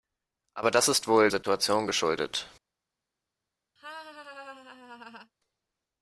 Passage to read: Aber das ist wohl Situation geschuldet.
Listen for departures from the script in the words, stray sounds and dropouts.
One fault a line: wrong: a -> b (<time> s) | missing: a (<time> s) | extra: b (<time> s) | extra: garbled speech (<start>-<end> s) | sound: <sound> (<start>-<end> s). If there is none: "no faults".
sound: laugh (3.8-5.3 s)